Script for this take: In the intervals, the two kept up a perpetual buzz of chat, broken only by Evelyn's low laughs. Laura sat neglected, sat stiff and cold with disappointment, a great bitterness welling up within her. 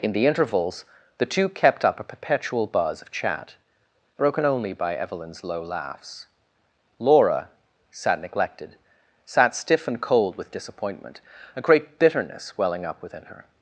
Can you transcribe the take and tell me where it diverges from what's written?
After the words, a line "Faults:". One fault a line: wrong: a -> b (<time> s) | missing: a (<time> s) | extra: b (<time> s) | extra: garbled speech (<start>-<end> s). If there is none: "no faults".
In the intervals, the two kept up a perpetual buzz of chat, broken only by Evelyn's low laughs. Laura sat neglected, sat stiff and cold with disappointment, a great bitterness welling up within her.
Faults:
no faults